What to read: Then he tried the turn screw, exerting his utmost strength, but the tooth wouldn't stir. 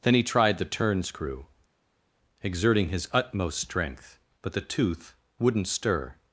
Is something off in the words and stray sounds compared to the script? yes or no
no